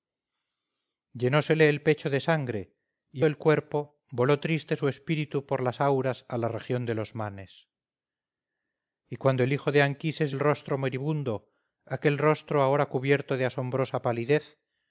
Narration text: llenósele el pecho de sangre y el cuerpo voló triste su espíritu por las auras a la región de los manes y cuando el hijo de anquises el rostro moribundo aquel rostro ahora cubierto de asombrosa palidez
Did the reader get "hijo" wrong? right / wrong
right